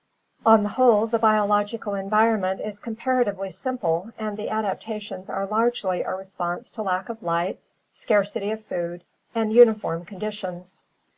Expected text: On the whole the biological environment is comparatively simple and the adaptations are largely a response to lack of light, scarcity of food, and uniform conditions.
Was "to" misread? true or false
false